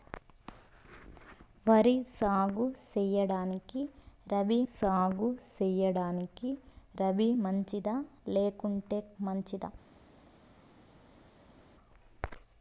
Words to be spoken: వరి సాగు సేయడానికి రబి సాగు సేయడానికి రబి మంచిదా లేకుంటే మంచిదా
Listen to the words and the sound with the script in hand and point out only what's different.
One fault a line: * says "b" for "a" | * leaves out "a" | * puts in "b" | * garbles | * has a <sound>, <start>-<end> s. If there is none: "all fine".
all fine